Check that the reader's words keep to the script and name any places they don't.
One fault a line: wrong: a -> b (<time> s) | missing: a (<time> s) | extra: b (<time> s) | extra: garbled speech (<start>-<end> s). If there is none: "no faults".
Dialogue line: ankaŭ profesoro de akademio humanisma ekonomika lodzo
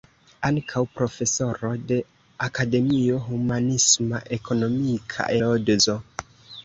no faults